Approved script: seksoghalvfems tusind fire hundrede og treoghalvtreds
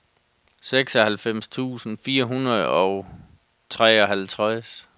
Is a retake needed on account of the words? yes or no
no